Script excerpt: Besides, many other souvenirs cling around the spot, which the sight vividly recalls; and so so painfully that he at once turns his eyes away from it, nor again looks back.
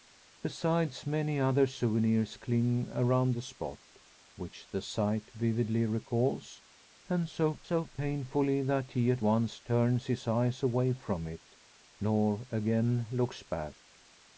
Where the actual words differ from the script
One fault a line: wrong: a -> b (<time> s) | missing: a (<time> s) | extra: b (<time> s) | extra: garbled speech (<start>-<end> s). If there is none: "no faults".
no faults